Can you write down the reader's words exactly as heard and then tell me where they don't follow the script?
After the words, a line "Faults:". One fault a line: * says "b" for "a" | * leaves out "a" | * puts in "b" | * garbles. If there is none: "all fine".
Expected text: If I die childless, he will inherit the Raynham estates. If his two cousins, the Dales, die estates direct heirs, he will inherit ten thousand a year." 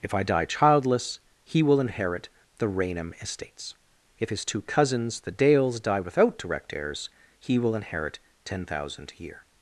If I die childless, he will inherit the Raynham estates. If his two cousins, the Dales, die without direct heirs, he will inherit ten thousand a year."
Faults:
* says "without" for "estates"